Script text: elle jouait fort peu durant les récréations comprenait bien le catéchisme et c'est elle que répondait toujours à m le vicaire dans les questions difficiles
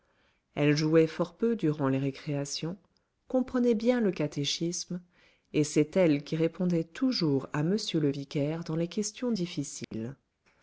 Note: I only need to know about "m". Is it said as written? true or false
true